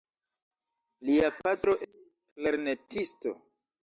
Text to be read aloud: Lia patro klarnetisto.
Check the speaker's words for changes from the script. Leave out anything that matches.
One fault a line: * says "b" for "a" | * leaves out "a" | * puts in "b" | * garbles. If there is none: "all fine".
all fine